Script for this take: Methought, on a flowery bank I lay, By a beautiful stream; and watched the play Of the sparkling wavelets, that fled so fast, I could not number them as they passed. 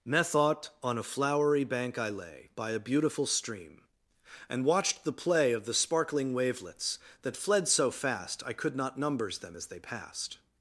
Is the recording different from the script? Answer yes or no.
yes